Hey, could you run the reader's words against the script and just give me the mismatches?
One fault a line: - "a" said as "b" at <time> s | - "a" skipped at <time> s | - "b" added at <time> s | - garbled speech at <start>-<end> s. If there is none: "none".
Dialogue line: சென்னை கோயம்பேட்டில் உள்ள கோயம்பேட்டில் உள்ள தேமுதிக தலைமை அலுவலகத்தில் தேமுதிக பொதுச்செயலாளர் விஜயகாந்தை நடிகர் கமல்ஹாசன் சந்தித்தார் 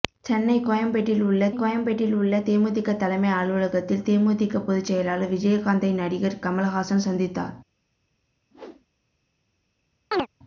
none